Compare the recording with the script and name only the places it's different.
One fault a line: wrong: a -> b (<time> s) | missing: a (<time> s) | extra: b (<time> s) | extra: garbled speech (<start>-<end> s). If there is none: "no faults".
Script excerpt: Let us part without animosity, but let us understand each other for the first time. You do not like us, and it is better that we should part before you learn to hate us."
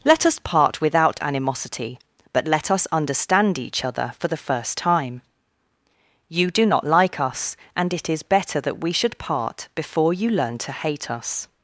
no faults